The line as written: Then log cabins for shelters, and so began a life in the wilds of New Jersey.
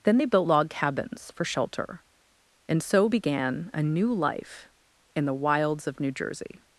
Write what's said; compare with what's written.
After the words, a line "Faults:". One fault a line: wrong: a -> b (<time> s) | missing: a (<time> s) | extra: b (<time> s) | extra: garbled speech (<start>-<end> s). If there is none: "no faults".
Then they built log cabins for shelter, and so began a new life in the wilds of New Jersey.
Faults:
extra: they built (0.1 s)
wrong: shelters -> shelter (1.4 s)
extra: new (3.8 s)